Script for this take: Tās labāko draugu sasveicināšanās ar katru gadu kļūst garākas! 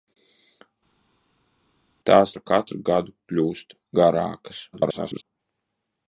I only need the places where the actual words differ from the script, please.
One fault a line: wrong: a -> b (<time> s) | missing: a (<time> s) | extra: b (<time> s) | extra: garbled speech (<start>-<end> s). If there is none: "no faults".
missing: labāko draugu sasveicināšanās (2.3 s)
extra: garbled speech (4.7-5.2 s)